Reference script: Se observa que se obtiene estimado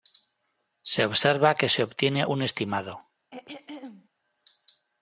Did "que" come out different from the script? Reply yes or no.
no